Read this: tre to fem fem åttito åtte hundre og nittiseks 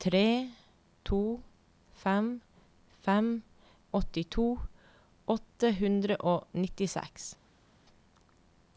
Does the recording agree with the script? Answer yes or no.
yes